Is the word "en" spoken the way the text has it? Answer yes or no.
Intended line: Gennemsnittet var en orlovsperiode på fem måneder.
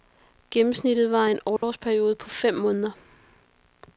yes